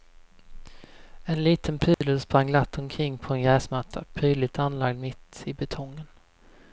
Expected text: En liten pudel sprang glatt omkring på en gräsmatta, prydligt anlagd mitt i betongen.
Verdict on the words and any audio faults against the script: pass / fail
fail